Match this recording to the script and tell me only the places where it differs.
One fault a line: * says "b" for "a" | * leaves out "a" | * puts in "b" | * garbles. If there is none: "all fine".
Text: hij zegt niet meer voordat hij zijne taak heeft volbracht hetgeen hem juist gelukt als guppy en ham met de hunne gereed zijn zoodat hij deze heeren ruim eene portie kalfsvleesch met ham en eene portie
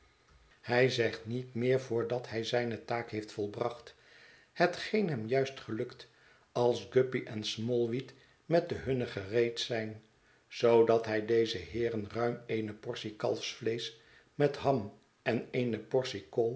* says "smallweed" for "ham"